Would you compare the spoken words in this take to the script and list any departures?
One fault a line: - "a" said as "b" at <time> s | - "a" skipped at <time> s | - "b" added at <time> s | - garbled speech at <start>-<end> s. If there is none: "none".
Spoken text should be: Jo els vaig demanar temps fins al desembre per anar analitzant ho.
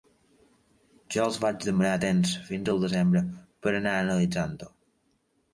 none